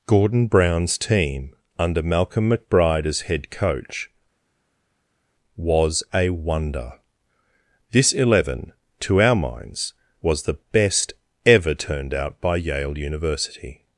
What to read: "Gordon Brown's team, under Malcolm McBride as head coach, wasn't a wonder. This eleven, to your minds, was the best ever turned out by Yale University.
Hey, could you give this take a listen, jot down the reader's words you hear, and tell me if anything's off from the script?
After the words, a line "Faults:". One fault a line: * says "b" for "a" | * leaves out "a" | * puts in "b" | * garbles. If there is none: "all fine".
"Gordon Brown's team, under Malcolm McBride as head coach, was a wonder. This eleven, to our minds, was the best ever turned out by Yale University.
Faults:
* says "was" for "wasn't"
* says "our" for "your"